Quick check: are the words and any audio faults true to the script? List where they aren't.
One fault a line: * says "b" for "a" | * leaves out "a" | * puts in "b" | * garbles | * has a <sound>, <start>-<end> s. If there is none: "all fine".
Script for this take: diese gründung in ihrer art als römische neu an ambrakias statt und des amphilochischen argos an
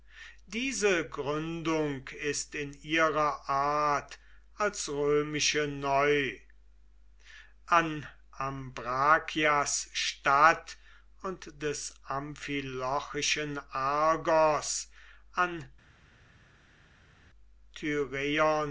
* puts in "ist"